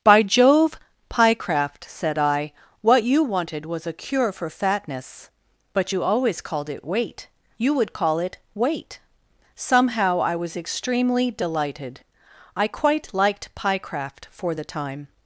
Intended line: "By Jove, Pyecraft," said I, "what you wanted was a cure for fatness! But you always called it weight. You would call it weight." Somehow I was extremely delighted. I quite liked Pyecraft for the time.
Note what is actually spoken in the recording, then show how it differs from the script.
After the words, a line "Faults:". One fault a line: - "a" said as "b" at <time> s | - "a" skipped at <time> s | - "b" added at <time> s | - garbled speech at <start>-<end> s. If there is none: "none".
"By Jove, Pyecraft," said I, "what you wanted was a cure for fatness! But you always called it weight. You would call it weight." Somehow I was extremely delighted. I quite liked Pyecraft for the time.
Faults:
none